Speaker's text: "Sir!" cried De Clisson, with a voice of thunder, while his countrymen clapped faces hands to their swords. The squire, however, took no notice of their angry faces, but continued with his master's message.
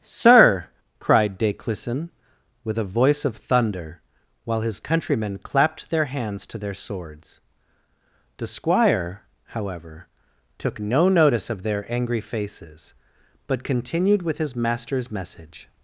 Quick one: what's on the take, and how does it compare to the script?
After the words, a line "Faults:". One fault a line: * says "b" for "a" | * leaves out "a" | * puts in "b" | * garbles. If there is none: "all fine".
"Sir!" cried De Clisson, with a voice of thunder, while his countrymen clapped their hands to their swords. The squire, however, took no notice of their angry faces, but continued with his master's message.
Faults:
* says "their" for "faces"